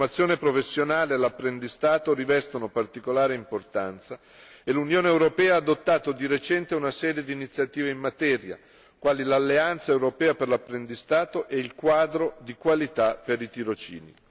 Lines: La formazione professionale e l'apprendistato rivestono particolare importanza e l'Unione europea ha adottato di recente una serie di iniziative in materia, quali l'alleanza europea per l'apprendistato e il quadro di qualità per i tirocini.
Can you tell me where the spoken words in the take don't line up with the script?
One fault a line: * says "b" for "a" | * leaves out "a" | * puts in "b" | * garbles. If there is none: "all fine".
all fine